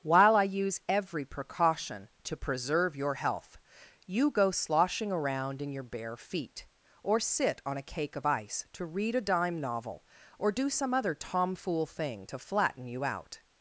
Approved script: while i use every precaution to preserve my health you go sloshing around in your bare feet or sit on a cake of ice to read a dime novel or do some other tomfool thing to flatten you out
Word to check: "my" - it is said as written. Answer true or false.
false